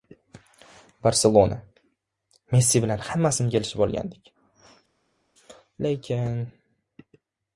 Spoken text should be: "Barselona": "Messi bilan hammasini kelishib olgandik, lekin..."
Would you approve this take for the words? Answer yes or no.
yes